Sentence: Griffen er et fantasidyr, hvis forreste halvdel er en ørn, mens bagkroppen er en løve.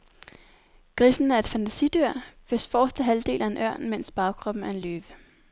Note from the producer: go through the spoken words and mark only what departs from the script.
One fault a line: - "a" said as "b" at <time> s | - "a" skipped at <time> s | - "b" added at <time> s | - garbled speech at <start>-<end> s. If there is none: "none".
none